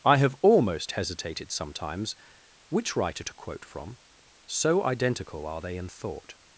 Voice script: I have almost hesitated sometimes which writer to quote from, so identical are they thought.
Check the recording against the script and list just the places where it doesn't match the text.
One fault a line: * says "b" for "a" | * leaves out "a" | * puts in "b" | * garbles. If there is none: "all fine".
* puts in "in"